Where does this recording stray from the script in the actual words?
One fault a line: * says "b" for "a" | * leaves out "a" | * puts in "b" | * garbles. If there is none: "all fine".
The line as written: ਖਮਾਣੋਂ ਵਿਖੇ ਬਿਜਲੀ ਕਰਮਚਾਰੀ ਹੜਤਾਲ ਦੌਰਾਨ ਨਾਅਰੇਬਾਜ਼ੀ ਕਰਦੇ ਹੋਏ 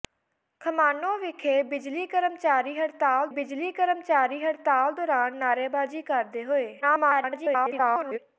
* puts in "ਬਿਜਲੀ ਕਰਮਚਾਰੀ ਹੜਤਾਲ"
* garbles